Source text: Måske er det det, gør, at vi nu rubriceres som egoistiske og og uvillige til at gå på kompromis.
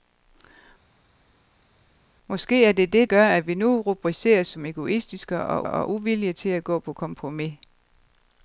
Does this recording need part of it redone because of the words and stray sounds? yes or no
no